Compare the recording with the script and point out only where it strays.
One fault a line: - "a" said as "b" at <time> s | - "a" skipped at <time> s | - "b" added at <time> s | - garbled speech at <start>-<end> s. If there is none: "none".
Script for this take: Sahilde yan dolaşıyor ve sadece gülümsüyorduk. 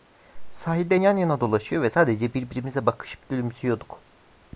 - "yana" added at 1.2 s
- "birbirimize bakışıp" added at 2.3 s